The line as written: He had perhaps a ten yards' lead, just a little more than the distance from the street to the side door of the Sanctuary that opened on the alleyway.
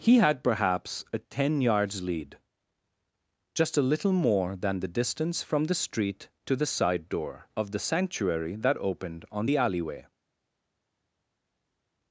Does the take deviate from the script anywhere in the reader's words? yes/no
no